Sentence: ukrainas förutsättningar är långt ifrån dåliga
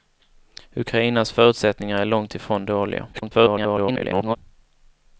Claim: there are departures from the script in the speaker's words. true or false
true